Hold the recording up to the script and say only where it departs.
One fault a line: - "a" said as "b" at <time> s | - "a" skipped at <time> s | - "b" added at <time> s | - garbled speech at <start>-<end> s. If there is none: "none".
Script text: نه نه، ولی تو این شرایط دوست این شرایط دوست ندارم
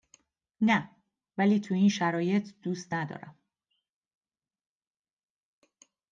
- "نه" skipped at 0.9 s
- "این شرایط دوست" skipped at 3.0 s